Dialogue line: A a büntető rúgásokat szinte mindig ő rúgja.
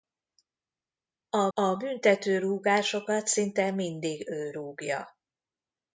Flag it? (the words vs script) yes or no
no